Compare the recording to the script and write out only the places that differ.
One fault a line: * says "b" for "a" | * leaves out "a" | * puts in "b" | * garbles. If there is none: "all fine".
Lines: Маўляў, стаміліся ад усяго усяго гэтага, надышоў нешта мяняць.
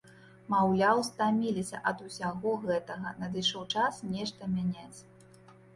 * leaves out "усяго"
* puts in "час"